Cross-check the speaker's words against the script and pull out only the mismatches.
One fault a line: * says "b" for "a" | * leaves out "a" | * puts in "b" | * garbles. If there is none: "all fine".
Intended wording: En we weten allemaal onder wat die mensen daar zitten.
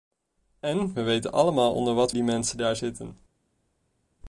all fine